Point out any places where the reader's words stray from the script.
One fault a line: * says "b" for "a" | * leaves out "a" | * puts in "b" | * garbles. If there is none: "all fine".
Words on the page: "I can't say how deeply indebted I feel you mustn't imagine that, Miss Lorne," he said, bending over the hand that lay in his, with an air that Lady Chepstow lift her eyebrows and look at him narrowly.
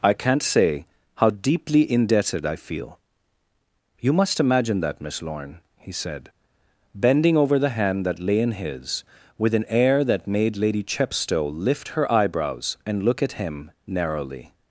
* says "must" for "mustn't"
* puts in "made"